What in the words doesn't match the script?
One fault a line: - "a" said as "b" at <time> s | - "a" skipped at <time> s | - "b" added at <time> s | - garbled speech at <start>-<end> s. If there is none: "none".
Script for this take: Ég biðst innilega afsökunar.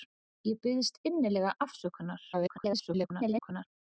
- garbled speech at 2.3-3.7 s